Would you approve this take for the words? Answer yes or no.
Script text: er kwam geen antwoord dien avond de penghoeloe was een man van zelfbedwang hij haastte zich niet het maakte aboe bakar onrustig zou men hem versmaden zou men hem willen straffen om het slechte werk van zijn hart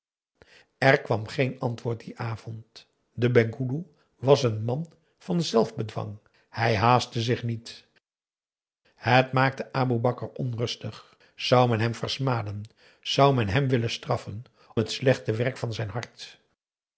no